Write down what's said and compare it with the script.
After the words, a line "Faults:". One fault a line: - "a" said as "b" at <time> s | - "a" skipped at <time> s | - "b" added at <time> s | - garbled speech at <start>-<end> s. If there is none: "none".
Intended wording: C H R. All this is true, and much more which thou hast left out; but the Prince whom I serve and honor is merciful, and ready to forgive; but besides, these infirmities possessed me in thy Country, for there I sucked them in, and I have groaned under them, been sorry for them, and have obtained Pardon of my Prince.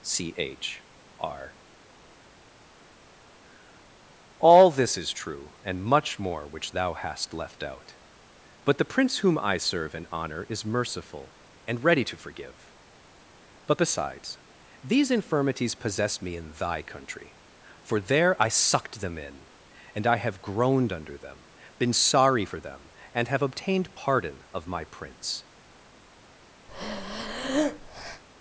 C H R. All this is true, and much more which thou hast left out; but the Prince whom I serve and honor is merciful, and ready to forgive; but besides, these infirmities possess me in thy Country, for there I sucked them in, and I have groaned under them, been sorry for them, and have obtained Pardon of my Prince.
Faults:
- "possessed" said as "possess" at 15.8 s